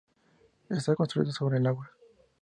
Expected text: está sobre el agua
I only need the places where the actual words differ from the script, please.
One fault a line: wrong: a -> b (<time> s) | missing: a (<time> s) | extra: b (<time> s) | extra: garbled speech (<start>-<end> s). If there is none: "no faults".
extra: construido (0.9 s)